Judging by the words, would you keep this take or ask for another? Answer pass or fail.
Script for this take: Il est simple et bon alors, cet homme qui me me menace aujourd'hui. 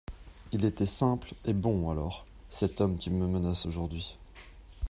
fail